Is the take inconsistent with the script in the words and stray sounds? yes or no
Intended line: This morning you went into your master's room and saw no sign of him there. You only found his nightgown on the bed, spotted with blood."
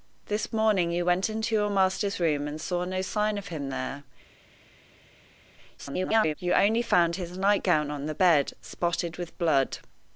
yes